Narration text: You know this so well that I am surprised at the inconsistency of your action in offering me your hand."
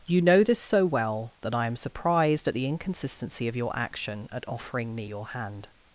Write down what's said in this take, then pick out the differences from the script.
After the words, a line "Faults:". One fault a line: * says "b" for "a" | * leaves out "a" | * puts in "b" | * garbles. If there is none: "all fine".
You know this so well that I am surprised at the inconsistency of your action at offering me your hand."
Faults:
* says "at" for "in"